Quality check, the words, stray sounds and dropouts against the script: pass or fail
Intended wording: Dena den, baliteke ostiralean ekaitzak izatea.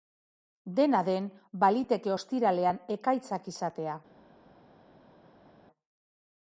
pass